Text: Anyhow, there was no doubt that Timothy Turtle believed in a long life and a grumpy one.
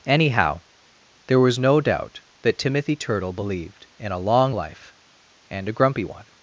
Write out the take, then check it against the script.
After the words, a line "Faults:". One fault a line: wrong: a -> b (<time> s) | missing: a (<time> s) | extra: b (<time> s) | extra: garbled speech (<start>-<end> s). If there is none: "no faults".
Anyhow, there was no doubt that Timothy Turtle believed in a long life and a grumpy one.
Faults:
no faults